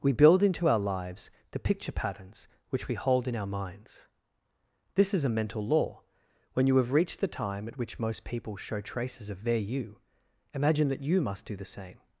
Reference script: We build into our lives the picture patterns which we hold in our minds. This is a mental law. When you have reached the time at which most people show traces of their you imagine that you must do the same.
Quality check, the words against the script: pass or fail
pass